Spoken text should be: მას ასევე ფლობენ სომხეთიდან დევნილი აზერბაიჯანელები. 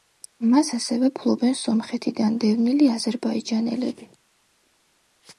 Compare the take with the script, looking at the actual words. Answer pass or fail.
pass